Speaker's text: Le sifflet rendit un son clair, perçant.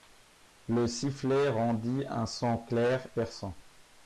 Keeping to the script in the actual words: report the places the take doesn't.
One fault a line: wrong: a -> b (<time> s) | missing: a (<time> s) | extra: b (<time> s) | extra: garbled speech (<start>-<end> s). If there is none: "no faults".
no faults